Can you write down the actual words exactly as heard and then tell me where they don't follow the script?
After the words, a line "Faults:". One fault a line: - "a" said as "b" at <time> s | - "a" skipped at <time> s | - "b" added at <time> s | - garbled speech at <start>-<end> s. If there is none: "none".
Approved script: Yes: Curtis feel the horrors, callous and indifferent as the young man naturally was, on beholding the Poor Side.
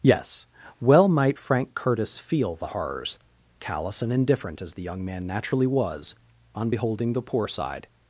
Yes: well might Frank Curtis feel the horrors, callous and indifferent as the young man naturally was, on beholding the Poor Side.
Faults:
- "well might Frank" added at 0.8 s